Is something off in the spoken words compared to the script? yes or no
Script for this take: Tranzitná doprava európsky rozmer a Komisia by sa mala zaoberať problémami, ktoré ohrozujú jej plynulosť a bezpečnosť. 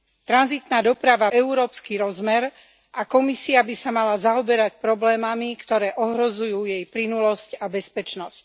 no